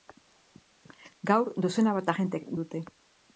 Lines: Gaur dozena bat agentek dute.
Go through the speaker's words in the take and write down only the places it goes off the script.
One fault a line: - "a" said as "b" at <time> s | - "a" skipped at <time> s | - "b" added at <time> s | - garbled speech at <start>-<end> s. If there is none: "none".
none